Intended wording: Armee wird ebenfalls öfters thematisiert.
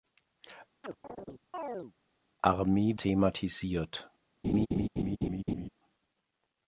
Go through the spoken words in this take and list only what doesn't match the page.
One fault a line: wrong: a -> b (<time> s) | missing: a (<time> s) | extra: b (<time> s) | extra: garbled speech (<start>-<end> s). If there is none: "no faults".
missing: wird ebenfalls öfters (3.0 s)